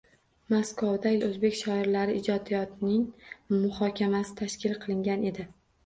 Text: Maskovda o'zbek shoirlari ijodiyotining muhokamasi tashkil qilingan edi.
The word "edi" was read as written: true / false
true